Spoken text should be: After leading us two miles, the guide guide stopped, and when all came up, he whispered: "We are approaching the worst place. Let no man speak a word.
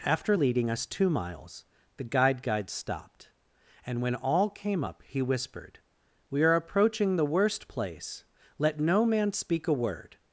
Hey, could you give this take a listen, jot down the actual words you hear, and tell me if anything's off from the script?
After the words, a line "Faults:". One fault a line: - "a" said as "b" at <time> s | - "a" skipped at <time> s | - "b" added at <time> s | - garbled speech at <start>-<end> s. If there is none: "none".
After leading us two miles, the guide guide stopped, and when all came up, he whispered: "We are approaching the worst place. Let no man speak a word.
Faults:
none